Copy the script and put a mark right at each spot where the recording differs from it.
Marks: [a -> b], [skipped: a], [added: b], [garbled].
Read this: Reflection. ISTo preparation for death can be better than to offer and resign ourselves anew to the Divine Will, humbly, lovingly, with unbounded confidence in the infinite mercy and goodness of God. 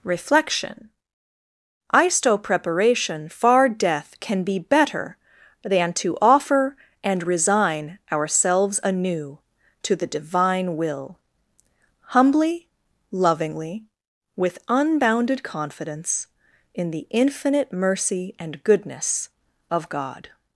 Reflection. ISTo preparation [for -> far] death can be better than to offer and resign ourselves anew to the Divine Will, humbly, lovingly, with unbounded confidence in the infinite mercy and goodness of God.